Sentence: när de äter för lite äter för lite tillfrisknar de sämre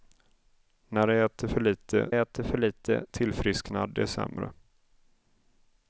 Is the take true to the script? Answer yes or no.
yes